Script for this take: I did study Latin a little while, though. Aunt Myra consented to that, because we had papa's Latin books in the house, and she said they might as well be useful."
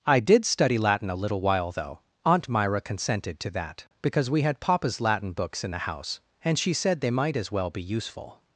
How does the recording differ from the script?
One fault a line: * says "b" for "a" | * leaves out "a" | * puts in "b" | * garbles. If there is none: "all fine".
all fine